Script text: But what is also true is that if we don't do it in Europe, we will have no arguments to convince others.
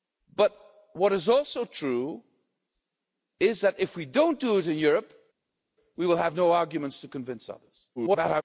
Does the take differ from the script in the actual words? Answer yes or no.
yes